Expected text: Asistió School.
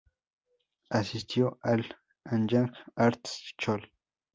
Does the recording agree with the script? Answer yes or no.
no